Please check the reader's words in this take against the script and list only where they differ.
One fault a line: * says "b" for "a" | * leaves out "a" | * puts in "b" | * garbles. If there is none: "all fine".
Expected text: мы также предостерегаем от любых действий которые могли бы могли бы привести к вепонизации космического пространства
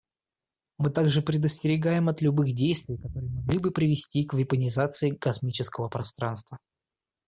* leaves out "могли бы"